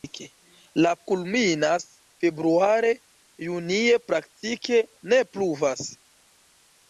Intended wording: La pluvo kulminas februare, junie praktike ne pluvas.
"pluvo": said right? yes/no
no